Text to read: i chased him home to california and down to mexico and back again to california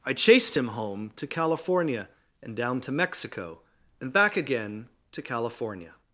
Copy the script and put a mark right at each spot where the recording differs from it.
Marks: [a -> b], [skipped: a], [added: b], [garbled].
i chased him home to california and down to mexico and back again to california